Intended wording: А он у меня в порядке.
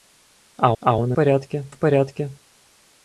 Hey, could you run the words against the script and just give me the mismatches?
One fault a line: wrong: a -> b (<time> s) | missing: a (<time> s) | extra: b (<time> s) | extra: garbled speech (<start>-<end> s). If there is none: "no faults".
extra: а (0.8 s)
wrong: меня -> порядке (1.1 s)